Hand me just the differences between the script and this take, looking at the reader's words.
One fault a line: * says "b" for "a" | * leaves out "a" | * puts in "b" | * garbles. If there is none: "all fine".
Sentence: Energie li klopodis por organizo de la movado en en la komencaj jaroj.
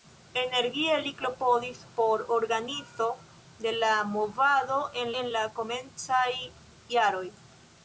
all fine